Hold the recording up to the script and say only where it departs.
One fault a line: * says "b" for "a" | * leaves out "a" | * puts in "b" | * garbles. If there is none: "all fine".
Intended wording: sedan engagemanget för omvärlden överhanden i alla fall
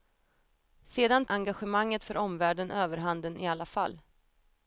all fine